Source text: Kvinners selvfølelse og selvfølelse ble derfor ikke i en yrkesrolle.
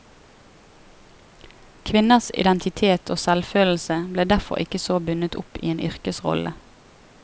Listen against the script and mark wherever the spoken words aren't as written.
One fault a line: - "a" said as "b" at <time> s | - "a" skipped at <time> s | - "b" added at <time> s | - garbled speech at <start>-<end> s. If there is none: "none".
- "selvfølelse" said as "identitet" at 2.4 s
- "så bundet opp" added at 4.9 s